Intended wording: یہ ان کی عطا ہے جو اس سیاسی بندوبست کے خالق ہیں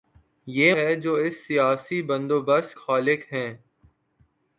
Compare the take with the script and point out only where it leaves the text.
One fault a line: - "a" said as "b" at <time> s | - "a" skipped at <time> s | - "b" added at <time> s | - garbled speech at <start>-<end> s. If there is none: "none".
- "ان کی عطا" skipped at 0.7 s
- "کے" skipped at 2.8 s